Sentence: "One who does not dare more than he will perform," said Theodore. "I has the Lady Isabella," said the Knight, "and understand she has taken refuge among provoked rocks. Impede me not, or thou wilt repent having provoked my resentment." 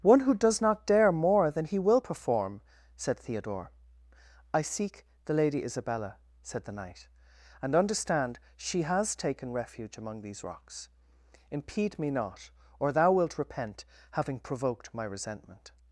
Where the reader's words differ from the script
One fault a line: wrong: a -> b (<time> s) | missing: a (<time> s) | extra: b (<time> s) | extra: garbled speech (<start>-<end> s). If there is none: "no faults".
wrong: has -> seek (4.6 s)
wrong: provoked -> these (10.2 s)